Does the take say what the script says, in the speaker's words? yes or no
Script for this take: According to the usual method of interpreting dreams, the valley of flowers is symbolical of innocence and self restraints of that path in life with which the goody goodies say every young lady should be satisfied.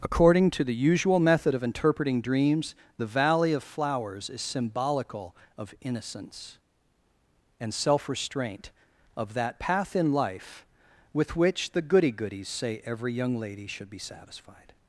no